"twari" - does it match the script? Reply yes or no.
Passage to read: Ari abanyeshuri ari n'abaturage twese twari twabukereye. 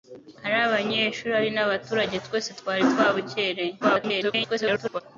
yes